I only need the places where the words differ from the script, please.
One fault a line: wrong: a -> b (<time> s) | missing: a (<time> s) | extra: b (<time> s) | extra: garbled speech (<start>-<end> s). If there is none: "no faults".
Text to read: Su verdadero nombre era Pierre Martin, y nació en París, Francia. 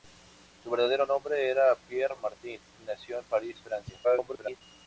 extra: garbled speech (4.0-4.6 s)